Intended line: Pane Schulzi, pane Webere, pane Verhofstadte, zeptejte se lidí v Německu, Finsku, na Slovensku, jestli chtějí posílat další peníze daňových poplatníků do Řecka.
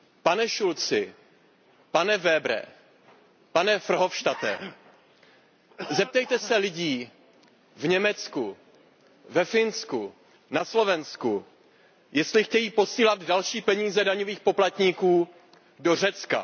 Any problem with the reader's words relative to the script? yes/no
yes